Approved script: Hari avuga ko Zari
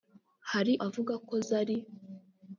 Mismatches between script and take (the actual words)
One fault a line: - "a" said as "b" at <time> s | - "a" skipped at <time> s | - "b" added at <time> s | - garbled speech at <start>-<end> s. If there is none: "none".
none